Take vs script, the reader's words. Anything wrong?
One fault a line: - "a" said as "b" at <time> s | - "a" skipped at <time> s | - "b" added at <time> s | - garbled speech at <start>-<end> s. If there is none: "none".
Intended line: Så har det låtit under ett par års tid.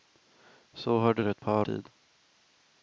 - "låtit under" skipped at 1.2 s
- "års" skipped at 1.7 s